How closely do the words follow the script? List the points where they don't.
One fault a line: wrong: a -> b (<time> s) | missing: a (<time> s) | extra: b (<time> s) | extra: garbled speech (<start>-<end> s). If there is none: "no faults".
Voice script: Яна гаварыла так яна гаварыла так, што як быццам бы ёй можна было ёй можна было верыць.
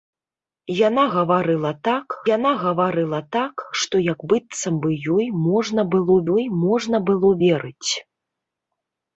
no faults